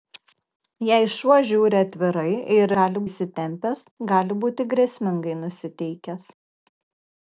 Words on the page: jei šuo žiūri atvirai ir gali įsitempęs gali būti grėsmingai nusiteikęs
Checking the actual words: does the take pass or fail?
pass